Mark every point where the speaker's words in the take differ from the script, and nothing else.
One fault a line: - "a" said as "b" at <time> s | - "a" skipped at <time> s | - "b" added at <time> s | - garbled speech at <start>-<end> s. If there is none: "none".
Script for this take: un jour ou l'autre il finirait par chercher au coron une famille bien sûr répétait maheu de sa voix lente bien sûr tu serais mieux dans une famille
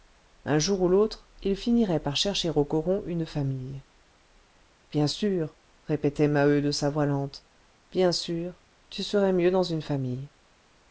none